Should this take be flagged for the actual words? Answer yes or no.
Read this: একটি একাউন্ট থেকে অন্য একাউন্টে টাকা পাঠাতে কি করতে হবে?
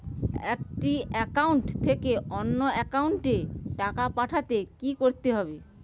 no